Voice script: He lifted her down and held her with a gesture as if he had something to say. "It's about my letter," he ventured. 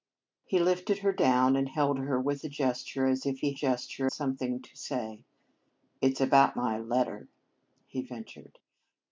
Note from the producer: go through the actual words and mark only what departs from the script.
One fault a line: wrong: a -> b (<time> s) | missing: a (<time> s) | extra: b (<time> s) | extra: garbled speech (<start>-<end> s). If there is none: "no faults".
wrong: had -> gesture (3.5 s)